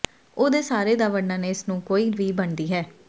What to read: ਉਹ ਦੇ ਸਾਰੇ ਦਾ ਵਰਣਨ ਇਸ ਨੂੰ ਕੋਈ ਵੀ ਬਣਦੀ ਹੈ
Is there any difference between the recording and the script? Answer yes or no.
no